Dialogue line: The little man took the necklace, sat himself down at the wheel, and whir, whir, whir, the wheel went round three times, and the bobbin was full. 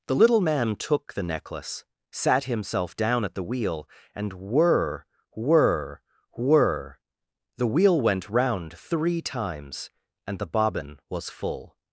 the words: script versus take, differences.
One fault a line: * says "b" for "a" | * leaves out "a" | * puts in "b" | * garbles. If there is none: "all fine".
all fine